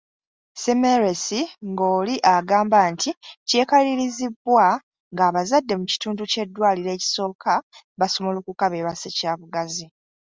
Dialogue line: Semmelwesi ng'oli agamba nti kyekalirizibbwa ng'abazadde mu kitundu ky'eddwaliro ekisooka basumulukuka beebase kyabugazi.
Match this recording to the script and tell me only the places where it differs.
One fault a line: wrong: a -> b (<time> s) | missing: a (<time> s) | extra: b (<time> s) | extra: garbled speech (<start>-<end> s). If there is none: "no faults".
no faults